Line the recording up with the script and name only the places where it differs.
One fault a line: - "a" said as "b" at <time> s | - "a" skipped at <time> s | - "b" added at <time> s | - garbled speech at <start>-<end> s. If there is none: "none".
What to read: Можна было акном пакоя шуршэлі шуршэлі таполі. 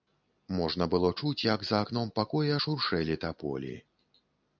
- "чуць як за" added at 1.2 s
- "шуршэлі" skipped at 3.2 s